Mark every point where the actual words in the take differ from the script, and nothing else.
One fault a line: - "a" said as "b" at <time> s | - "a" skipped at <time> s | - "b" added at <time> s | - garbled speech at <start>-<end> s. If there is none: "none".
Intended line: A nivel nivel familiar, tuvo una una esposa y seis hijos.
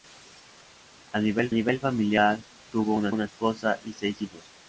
none